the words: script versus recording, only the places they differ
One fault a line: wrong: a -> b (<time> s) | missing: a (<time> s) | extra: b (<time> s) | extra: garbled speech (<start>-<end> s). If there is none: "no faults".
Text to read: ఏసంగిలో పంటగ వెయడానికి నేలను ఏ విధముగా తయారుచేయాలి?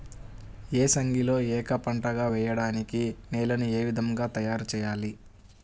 extra: ఏక (1.5 s)